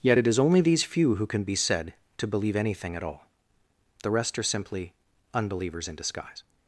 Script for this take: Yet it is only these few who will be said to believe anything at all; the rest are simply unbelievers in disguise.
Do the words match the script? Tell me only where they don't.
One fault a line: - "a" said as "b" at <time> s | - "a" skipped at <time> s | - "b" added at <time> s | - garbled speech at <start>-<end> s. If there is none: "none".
- "will" said as "can" at 1.3 s